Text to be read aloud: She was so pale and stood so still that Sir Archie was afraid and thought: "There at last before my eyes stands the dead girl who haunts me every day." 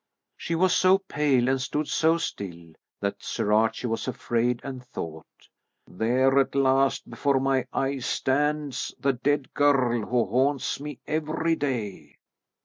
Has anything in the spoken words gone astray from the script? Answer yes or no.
no